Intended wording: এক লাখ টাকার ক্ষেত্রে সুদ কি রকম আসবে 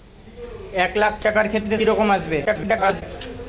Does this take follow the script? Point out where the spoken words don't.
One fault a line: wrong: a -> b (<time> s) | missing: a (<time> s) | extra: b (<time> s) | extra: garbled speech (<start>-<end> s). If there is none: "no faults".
missing: সুদ (1.8 s)
extra: garbled speech (2.5-3.0 s)